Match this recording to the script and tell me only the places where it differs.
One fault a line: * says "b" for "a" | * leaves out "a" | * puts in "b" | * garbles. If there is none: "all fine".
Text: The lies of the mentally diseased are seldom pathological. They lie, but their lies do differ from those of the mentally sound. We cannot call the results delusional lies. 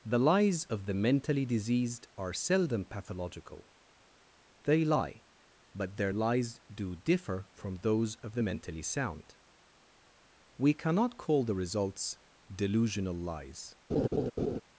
all fine